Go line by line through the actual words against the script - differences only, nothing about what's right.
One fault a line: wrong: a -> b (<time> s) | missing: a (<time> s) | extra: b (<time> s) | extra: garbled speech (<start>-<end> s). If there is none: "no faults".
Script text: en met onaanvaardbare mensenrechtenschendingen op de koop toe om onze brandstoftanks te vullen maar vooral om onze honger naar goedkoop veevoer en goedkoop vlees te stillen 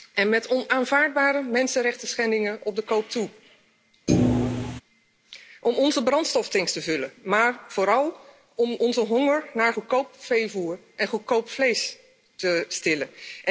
no faults